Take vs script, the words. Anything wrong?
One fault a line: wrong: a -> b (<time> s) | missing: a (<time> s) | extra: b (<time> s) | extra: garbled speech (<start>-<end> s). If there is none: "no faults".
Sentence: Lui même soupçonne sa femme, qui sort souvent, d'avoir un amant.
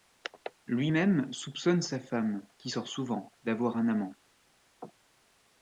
no faults